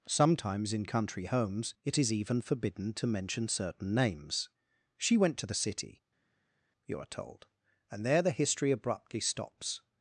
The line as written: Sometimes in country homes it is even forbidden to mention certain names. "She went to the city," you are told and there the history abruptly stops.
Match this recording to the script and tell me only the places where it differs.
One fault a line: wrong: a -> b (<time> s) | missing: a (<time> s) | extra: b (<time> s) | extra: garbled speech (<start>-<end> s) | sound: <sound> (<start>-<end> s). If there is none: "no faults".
no faults